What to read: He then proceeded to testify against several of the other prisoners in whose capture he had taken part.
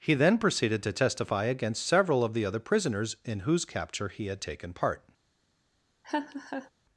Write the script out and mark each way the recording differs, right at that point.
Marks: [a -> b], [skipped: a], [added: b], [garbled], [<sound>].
He then proceeded to testify against several of the other prisoners in whose capture he had taken part. [laugh]